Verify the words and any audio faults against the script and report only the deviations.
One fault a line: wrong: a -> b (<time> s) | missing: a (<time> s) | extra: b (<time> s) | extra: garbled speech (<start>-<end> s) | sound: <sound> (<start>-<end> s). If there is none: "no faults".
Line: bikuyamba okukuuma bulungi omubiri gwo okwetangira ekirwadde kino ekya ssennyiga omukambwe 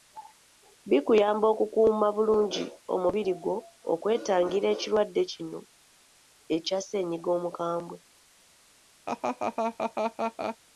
sound: laugh (9.1-10.6 s)